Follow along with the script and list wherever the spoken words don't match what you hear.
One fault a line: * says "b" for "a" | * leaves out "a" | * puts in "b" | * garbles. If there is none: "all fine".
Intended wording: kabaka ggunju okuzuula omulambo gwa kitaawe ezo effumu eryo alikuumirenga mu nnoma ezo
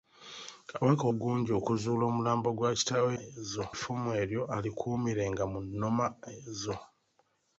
all fine